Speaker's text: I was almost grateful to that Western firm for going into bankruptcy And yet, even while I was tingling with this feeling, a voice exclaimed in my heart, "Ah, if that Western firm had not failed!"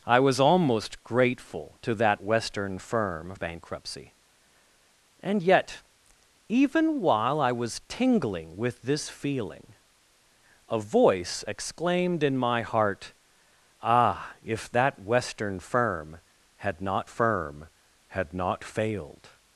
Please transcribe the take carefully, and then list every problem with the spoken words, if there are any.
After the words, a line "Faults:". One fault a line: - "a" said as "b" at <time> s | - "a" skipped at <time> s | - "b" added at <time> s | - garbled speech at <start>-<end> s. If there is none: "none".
I was almost grateful to that Western firm bankruptcy And yet, even while I was tingling with this feeling, a voice exclaimed in my heart, "Ah, if that Western firm had not firm had not failed!"
Faults:
- "for going into" skipped at 3.4 s
- "firm had not" added at 17.0 s